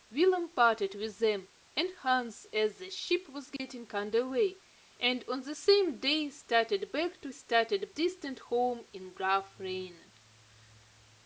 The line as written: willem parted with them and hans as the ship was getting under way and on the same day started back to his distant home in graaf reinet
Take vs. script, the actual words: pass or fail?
fail